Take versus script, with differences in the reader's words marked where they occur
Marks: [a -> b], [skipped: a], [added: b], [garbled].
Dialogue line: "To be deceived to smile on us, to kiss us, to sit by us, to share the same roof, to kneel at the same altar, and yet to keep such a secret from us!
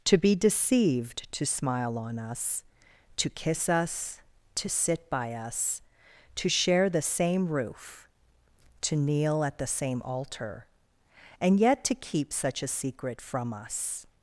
"To be deceived to smile on us, to kiss us, to sit by us, to share the same roof, to kneel at the same altar, and yet to keep such a secret from us!